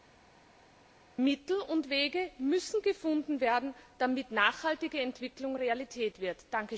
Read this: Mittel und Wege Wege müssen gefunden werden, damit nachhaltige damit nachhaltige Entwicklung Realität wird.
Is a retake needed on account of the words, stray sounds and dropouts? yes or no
yes